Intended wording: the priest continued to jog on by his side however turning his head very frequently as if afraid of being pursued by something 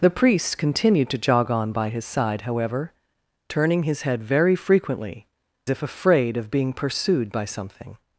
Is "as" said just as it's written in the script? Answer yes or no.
no